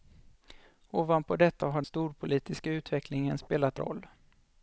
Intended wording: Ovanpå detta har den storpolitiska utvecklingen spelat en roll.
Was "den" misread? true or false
true